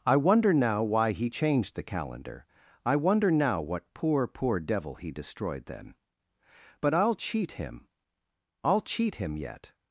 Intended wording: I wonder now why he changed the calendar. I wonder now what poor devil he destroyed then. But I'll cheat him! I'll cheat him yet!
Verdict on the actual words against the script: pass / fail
fail